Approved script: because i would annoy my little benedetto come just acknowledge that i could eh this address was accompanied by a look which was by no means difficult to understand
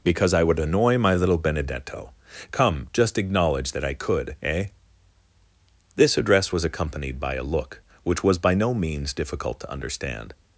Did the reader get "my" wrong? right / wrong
right